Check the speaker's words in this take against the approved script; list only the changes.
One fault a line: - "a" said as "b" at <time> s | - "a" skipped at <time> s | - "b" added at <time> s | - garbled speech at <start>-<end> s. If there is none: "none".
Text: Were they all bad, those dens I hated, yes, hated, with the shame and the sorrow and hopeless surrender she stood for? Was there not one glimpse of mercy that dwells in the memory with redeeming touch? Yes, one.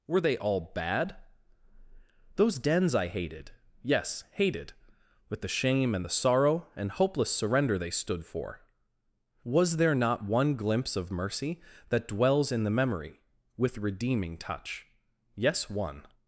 - "she" said as "they" at 7.8 s